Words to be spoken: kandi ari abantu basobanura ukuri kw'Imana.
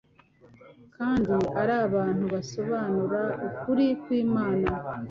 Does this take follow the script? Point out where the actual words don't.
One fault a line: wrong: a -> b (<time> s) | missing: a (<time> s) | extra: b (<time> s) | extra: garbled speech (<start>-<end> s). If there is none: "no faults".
no faults